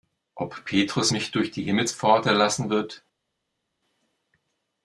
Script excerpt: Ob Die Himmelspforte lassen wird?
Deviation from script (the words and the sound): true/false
true